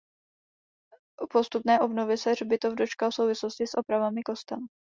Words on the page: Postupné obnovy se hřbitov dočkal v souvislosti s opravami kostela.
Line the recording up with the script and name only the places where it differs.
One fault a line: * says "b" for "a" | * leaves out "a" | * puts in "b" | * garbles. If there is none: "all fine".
all fine